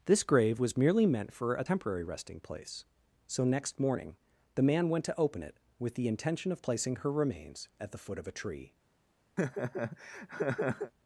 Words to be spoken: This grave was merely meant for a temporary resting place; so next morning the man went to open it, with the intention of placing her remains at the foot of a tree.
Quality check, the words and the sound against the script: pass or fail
fail